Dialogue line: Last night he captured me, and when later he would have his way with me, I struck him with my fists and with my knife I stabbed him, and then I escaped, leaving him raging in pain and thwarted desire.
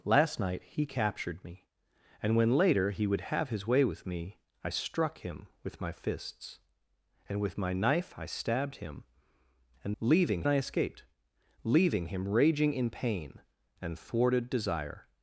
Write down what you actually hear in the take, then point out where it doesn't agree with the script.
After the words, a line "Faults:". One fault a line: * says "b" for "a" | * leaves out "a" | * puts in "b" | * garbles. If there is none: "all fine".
Last night he captured me, and when later he would have his way with me, I struck him with my fists and with my knife I stabbed him, and leaving I escaped, leaving him raging in pain and thwarted desire.
Faults:
* says "leaving" for "then"